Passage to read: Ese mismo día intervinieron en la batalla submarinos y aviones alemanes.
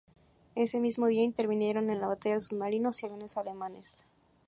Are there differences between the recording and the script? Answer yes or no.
no